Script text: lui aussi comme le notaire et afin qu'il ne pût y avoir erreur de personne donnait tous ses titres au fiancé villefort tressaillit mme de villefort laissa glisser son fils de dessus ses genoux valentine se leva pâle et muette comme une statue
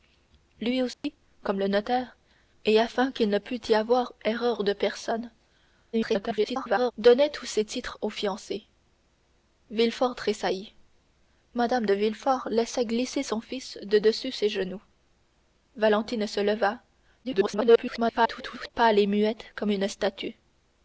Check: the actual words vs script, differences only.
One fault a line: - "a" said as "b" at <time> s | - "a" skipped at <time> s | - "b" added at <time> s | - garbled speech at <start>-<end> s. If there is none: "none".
- garbled speech at 5.9-6.9 s
- garbled speech at 17.2-18.7 s